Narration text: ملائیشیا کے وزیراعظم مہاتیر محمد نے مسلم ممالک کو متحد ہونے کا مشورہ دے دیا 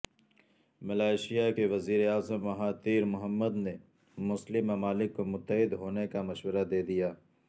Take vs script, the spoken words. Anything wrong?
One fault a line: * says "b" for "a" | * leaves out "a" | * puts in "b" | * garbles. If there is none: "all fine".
all fine